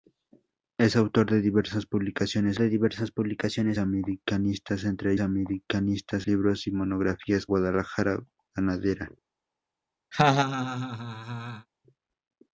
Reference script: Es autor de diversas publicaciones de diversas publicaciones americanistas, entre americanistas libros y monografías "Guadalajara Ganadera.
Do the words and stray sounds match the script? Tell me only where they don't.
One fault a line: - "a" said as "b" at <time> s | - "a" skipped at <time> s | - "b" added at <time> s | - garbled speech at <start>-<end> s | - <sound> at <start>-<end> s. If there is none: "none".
- laugh at 10.1-11.7 s